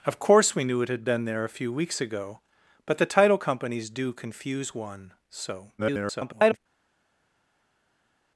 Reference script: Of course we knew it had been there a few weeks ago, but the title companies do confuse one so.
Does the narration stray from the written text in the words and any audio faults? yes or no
yes